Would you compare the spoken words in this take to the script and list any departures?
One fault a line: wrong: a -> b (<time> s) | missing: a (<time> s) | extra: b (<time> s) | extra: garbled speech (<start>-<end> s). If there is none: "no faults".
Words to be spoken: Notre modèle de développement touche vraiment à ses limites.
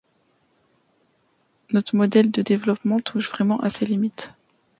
no faults